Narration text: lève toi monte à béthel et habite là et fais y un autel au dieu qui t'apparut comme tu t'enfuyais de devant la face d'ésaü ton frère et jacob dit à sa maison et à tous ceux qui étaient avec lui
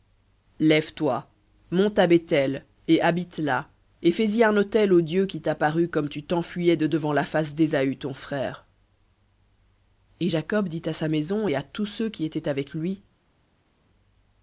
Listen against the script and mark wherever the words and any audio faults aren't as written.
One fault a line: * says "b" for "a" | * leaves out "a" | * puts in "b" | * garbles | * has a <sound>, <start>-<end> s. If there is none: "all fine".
all fine